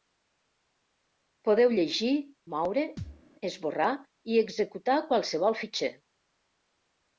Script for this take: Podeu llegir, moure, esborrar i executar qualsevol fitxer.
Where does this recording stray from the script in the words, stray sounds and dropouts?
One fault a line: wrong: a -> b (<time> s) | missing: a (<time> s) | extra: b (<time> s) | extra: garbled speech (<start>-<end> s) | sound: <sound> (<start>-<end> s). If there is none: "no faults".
sound: thud (3.0-3.2 s)